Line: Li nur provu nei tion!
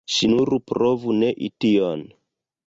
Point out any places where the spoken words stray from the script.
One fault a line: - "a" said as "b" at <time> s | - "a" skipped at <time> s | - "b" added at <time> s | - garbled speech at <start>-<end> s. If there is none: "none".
- "Li" said as "Ŝi" at 0.1 s